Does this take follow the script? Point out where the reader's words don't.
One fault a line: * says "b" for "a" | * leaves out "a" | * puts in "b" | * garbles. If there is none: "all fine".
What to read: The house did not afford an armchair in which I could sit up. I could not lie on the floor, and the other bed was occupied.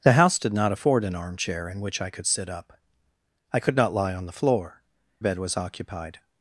* leaves out "and the other"